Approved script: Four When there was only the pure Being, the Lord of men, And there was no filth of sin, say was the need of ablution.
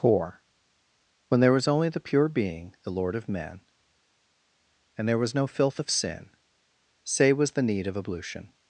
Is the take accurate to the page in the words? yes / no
yes